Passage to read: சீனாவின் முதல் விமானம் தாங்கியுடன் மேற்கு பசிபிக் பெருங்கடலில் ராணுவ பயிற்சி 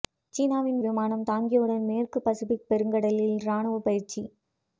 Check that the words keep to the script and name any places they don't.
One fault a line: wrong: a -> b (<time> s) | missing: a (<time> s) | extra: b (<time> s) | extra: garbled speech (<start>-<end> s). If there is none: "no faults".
missing: முதல் (0.8 s)